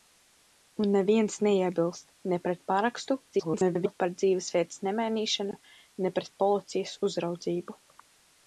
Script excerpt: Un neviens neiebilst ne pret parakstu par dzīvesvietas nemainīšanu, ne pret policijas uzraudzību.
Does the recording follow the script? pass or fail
fail